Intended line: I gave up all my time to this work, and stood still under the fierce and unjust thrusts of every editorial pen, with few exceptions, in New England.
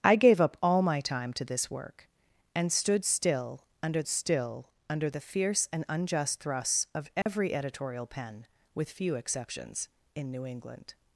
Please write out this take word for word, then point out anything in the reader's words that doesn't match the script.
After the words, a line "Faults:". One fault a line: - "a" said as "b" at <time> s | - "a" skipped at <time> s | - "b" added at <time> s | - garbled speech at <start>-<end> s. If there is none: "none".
I gave up all my time to this work, and stood still under still under the fierce and unjust thrusts of every editorial pen, with few exceptions, in New England.
Faults:
- "still under" added at 4.1 s